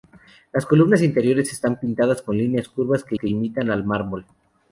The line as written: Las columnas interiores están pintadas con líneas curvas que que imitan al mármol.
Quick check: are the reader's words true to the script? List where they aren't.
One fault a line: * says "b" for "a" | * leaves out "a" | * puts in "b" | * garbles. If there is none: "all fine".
all fine